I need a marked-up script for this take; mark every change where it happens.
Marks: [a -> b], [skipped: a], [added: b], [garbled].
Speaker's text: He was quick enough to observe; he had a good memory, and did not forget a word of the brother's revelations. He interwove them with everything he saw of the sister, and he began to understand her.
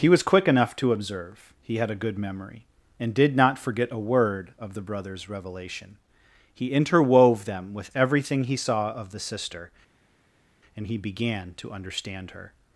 He was quick enough to observe; he had a good memory, and did not forget a word of the brother's [revelations. -> revelation] He interwove them with everything he saw of the sister, and he began to understand her.